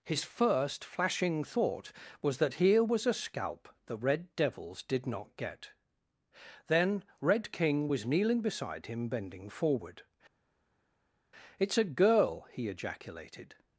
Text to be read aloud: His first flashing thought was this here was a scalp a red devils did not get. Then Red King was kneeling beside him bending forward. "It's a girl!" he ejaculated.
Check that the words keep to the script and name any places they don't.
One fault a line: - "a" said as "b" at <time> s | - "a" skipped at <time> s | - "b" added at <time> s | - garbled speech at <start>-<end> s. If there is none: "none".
- "this" said as "that" at 2.4 s
- "a" said as "the" at 3.9 s